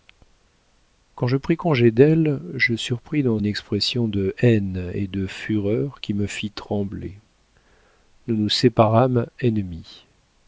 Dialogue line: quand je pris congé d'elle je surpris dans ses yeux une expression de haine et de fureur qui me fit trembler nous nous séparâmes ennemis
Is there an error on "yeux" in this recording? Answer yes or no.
yes